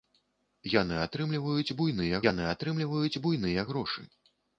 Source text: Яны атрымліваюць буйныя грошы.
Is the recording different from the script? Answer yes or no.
yes